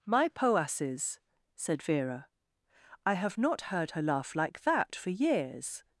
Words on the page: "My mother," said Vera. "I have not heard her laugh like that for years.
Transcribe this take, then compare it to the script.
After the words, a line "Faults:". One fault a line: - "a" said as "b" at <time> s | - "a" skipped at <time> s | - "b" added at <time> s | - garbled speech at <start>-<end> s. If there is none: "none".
"My poasses," said Vera. "I have not heard her laugh like that for years.
Faults:
- "mother" said as "poasses" at 0.3 s